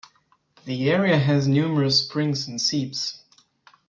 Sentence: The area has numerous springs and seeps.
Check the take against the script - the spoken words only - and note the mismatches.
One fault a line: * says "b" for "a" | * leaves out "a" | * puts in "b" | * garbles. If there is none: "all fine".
all fine